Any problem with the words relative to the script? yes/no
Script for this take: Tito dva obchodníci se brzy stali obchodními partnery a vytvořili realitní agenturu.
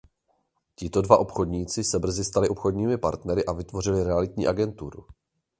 no